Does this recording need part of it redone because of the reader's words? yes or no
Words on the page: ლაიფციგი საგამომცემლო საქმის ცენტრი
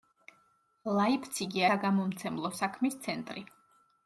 no